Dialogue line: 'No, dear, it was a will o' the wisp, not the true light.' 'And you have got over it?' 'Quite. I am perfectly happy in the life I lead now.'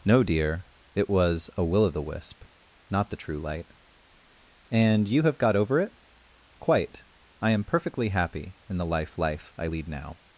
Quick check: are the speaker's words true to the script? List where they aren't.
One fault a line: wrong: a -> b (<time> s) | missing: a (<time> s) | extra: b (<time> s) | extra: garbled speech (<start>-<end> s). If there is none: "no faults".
extra: life (9.2 s)